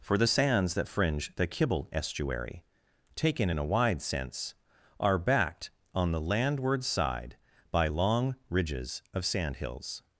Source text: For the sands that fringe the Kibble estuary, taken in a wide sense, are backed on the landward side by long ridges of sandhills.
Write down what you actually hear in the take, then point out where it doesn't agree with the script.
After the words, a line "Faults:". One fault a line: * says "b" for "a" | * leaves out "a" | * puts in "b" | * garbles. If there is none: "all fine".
For the sands that fringe the Kibble estuary, taken in a wide sense, are backed on the landward side by long ridges of sandhills.
Faults:
all fine